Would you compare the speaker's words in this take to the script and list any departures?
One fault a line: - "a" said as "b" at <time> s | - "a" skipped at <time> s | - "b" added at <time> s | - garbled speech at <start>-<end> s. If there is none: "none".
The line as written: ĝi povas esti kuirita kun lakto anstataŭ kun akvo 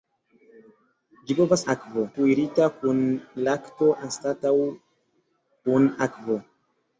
- "esti" said as "akvo" at 1.7 s